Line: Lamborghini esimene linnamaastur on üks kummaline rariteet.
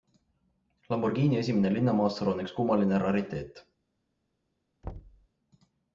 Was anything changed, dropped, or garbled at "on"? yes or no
no